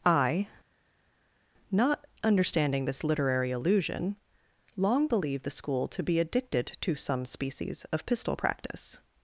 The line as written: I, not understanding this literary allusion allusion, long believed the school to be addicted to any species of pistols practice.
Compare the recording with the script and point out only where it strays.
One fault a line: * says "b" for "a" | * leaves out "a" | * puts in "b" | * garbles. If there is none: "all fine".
* leaves out "allusion"
* says "some" for "any"
* says "pistol" for "pistols"